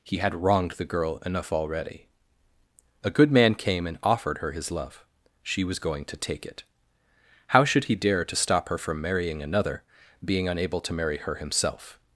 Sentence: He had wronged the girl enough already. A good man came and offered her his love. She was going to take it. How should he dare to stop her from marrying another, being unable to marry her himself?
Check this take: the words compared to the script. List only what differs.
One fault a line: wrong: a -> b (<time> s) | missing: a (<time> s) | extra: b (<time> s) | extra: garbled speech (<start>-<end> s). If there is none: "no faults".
no faults